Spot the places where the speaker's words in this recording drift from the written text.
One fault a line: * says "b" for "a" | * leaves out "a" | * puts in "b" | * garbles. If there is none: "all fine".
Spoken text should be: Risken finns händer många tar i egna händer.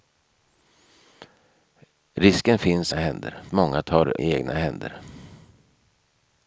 all fine